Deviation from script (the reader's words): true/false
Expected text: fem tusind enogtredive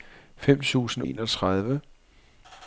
false